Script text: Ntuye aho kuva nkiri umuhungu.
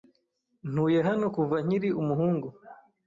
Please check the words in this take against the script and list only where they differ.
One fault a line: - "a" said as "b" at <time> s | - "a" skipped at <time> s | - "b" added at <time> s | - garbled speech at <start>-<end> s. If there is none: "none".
- "aho" said as "hano" at 1.1 s